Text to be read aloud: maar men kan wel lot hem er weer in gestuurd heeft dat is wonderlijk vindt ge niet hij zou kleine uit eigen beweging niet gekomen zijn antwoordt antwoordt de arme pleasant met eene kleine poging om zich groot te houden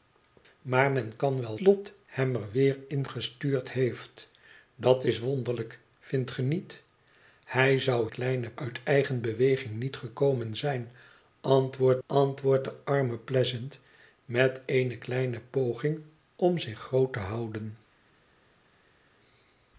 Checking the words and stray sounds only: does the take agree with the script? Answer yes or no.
yes